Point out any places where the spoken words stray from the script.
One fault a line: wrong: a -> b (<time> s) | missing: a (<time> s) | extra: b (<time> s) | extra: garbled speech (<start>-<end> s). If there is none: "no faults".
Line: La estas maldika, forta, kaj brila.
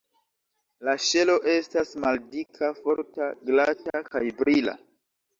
extra: ŝelo (1.1 s)
extra: glata (3.5 s)